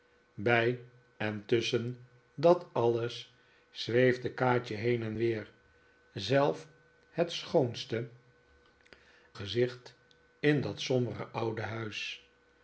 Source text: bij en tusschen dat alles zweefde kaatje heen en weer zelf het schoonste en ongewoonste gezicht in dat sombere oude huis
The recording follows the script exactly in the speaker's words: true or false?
false